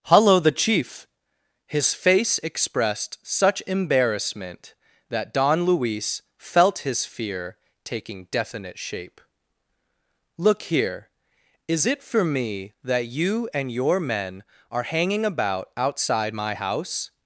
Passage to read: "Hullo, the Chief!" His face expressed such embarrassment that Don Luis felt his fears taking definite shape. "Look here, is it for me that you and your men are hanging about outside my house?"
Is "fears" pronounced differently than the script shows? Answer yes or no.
yes